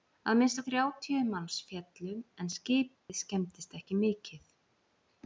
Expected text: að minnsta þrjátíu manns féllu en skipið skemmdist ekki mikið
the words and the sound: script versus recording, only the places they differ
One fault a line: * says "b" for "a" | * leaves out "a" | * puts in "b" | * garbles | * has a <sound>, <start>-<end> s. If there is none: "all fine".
* has a dropout, 3.0-3.1 s